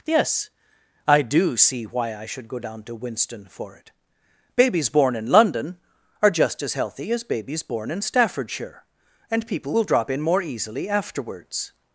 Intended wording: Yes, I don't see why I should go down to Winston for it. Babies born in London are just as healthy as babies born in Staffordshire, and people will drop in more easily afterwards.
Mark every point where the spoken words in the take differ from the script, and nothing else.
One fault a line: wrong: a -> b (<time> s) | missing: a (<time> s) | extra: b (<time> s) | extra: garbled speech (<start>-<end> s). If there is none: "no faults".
wrong: don't -> do (1.2 s)